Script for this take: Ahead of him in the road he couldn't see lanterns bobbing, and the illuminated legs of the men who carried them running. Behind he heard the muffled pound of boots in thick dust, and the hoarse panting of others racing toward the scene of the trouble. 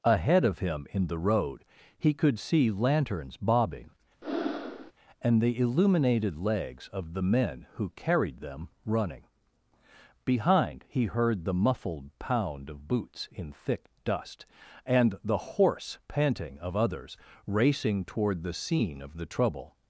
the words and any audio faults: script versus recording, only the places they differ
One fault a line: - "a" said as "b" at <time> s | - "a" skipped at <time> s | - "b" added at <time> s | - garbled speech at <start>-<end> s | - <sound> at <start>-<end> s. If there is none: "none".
- "couldn't" said as "could" at 2.1 s
- breath at 4.2-4.9 s